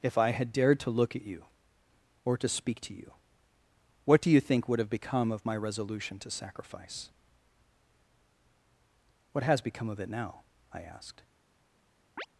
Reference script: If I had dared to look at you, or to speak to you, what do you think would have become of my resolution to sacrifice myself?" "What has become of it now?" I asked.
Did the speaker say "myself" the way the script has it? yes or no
no